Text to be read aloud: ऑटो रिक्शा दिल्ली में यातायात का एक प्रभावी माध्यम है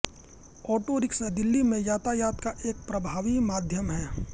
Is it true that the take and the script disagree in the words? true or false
false